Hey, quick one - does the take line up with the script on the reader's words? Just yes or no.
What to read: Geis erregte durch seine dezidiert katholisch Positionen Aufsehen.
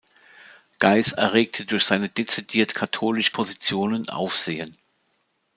yes